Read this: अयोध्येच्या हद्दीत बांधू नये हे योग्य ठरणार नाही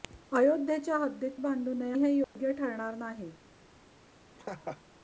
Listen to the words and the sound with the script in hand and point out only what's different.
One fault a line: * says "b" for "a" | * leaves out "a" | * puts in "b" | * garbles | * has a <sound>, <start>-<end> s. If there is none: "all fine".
* has a dropout, 2.2-2.4 s
* has a laugh, 4.3-4.8 s